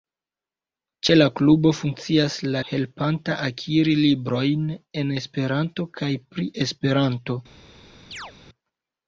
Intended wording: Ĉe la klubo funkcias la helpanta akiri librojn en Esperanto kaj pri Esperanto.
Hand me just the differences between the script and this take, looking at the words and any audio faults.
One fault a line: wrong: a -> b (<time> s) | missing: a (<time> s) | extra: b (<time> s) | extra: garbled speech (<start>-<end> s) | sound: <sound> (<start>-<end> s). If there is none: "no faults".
sound: chirp (8.1-8.3 s)